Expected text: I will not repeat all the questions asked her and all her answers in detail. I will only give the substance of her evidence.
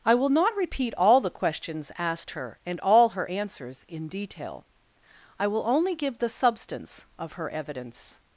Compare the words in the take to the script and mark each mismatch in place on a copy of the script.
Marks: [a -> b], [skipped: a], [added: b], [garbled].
I will not repeat all the questions asked her and all her answers in detail. I will only give the substance of her evidence.